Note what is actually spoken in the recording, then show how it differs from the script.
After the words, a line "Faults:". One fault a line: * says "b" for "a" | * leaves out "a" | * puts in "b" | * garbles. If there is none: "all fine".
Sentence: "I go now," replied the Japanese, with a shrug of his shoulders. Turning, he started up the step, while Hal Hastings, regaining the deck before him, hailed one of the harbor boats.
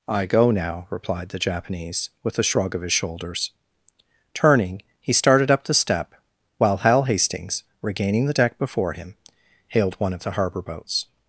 "I go now," replied the Japanese, with a shrug of his shoulders. Turning, he started up the step, while Hal Hastings, regaining the deck before him, hailed one of the harbor boats.
Faults:
all fine